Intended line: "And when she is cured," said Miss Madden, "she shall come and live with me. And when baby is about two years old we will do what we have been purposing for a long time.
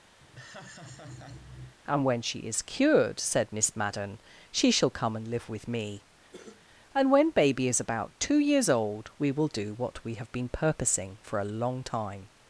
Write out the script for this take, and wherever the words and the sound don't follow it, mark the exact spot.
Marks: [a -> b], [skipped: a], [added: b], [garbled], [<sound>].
[laugh] "And when she is cured," said Miss Madden, "she shall come and live with me. [cough] And when baby is about two years old we will do what we have been purposing for a long time.